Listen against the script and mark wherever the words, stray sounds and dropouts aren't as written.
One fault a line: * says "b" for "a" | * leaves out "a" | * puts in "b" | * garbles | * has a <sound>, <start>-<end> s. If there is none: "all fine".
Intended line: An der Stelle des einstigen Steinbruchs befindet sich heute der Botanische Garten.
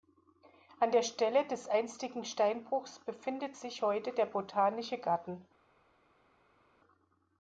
all fine